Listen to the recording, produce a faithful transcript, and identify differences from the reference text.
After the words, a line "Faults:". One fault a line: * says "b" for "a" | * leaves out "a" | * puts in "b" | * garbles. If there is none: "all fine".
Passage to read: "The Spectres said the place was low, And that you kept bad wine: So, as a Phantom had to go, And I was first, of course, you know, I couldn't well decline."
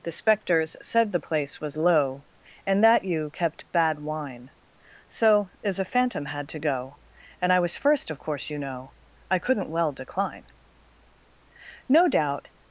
"The Spectres said the place was low, And that you kept bad wine: So, as a Phantom had to go, And I was first, of course, you know, I couldn't well decline." "No doubt
Faults:
* puts in "No doubt"